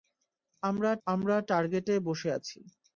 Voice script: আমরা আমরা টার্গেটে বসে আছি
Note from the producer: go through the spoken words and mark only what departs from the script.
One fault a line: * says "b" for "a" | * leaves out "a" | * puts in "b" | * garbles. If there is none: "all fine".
all fine